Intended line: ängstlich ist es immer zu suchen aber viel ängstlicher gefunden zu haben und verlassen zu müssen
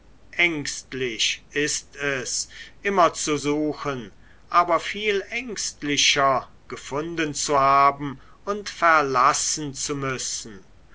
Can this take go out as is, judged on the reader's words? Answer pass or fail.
pass